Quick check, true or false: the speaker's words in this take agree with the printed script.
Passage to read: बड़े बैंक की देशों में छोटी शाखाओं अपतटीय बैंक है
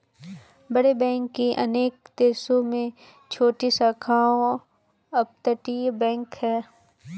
false